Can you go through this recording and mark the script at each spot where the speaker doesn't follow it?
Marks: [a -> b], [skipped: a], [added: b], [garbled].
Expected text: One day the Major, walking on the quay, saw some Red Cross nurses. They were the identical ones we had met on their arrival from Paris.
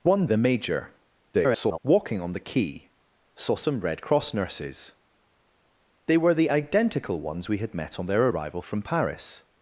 One [skipped: day] the Major, [garbled] walking on the quay, saw some Red Cross nurses. They were the identical ones we had met on their arrival from Paris.